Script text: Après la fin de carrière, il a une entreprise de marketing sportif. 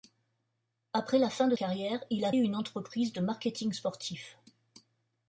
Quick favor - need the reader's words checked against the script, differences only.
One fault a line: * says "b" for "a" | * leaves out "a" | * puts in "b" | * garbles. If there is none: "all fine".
all fine